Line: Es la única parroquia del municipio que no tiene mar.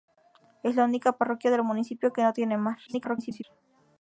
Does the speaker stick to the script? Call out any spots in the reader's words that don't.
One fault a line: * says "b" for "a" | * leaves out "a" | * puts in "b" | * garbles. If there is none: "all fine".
* garbles